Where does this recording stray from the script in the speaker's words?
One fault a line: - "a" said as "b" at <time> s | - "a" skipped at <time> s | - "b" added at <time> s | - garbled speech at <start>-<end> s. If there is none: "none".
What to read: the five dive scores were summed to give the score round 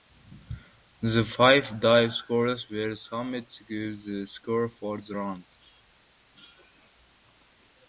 - "for the" added at 4.7 s